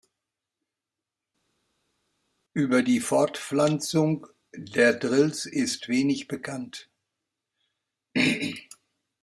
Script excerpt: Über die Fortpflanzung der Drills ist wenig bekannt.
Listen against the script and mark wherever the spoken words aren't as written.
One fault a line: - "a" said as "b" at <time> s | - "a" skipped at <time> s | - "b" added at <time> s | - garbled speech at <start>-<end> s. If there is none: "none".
none